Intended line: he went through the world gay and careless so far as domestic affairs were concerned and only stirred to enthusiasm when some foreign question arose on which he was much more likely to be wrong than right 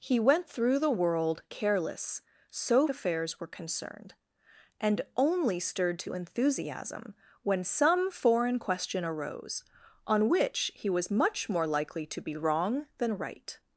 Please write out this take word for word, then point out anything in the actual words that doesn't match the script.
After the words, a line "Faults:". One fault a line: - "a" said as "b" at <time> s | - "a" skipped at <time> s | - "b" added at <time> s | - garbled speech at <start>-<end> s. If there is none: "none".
he went through the world careless so affairs were concerned and only stirred to enthusiasm when some foreign question arose on which he was much more likely to be wrong than right
Faults:
- "gay and" skipped at 1.4 s
- "far as domestic" skipped at 2.9 s